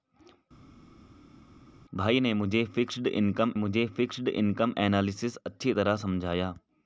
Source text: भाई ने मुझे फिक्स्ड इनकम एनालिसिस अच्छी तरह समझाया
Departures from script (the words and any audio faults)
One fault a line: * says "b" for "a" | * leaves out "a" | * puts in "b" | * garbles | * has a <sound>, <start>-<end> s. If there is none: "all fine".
* puts in "मुझे फिक्स्ड इनकम"